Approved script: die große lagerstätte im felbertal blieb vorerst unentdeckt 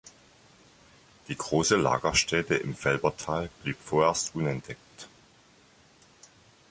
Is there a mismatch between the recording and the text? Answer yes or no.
no